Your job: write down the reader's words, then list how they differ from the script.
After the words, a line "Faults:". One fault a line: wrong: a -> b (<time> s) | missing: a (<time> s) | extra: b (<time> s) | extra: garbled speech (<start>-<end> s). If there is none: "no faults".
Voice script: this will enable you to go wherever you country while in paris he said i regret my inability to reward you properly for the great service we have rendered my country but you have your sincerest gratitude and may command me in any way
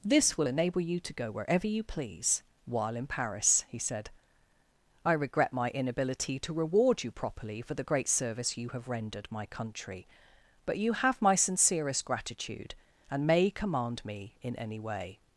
this will enable you to go wherever you please while in paris he said i regret my inability to reward you properly for the great service you have rendered my country but you have my sincerest gratitude and may command me in any way
Faults:
wrong: country -> please (1.8 s)
wrong: we -> you (8.6 s)
wrong: your -> my (11.2 s)